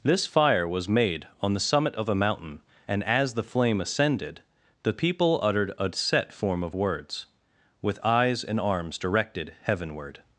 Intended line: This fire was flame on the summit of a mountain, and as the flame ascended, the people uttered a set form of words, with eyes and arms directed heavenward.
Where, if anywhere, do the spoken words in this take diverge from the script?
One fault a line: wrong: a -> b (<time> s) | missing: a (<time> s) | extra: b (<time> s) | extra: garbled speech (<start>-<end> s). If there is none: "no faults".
wrong: flame -> made (0.9 s)